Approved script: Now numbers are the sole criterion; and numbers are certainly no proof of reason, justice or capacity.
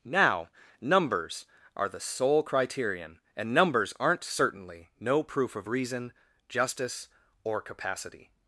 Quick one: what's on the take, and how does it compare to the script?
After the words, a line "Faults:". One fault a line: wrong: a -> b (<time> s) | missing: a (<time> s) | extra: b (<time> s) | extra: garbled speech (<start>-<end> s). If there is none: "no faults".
Now numbers are the sole criterion; and numbers aren't certainly no proof of reason, justice or capacity.
Faults:
wrong: are -> aren't (4.0 s)